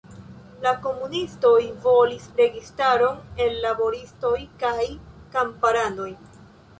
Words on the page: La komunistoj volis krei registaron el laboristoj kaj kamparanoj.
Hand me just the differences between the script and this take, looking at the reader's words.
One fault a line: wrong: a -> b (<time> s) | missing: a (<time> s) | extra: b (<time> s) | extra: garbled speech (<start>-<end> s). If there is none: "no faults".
missing: krei (2.2 s)